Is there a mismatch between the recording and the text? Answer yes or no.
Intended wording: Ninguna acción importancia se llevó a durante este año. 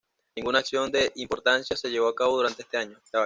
yes